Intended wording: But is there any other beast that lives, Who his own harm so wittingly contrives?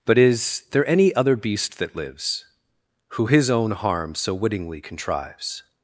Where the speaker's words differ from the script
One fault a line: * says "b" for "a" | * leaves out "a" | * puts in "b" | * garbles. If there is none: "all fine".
all fine